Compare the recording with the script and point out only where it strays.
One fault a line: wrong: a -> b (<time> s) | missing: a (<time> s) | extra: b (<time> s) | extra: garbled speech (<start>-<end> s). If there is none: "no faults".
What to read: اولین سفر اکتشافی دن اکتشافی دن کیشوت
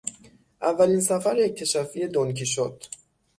missing: اکتشافی دن (2.3 s)